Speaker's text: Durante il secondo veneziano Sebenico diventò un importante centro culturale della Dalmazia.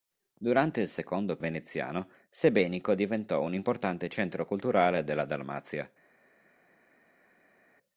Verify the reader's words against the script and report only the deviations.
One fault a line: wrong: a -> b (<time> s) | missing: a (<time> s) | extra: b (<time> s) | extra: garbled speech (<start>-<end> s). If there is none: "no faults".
no faults